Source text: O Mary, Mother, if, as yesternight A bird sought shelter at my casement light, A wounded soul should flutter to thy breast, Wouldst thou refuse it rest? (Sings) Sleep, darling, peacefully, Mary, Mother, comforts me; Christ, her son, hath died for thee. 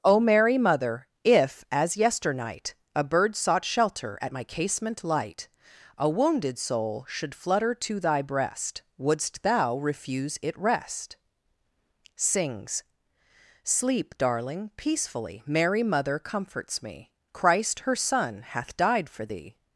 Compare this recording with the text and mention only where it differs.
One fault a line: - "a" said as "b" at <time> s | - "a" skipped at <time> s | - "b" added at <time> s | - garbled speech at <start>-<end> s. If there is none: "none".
none